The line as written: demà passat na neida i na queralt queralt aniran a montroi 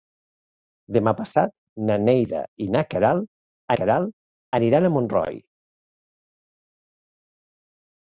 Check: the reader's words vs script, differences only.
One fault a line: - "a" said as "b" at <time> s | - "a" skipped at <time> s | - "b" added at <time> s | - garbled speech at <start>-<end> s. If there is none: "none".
none